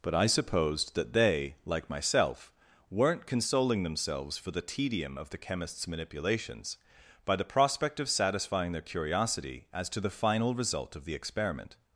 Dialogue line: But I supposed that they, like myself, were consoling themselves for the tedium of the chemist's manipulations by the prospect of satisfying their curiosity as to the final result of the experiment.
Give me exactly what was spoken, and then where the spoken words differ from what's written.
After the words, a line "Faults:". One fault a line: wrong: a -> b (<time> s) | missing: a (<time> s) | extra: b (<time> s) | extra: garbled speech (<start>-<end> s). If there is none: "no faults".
But I supposed that they, like myself, weren't consoling themselves for the tedium of the chemist's manipulations by the prospect of satisfying their curiosity as to the final result of the experiment.
Faults:
wrong: were -> weren't (2.9 s)